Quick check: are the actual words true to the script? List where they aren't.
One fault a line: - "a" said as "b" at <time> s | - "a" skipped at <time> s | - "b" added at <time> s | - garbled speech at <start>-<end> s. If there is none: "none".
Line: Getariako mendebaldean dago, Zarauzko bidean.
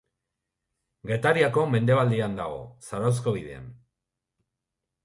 none